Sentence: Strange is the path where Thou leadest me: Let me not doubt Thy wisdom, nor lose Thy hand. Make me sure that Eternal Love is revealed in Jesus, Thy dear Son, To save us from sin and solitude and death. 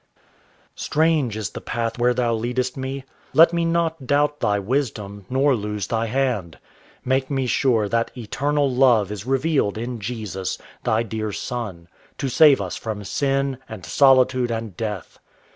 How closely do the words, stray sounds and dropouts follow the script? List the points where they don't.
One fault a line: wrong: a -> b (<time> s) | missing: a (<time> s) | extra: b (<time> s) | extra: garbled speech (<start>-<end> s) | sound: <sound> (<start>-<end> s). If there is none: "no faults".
no faults